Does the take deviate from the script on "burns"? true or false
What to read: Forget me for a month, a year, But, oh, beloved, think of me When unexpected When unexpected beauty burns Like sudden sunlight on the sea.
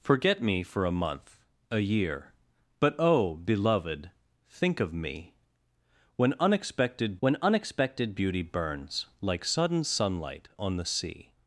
false